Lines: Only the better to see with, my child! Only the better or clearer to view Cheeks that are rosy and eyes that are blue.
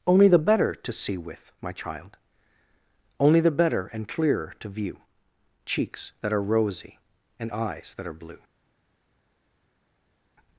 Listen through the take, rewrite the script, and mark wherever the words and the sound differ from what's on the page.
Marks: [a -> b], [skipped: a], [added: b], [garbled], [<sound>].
Only the better to see with, my child! Only the better [or -> and] clearer to view Cheeks that are rosy and eyes that are blue.